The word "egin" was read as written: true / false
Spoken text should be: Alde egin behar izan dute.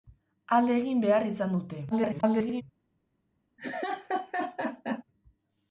true